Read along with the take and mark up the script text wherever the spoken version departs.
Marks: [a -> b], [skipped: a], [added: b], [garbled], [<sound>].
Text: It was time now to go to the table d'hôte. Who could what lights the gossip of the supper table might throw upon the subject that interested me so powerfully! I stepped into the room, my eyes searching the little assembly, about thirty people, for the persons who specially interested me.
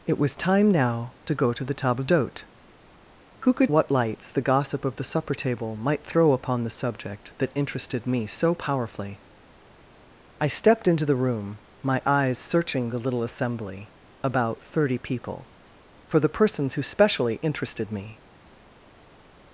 It was time now to go to the table d'hôte. Who could what lights the gossip of the supper table might throw upon the subject that interested me so powerfully! I stepped into the room, my eyes searching the little assembly, about thirty people, for the persons who specially interested me.